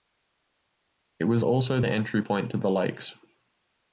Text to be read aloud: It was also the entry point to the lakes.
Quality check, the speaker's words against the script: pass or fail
pass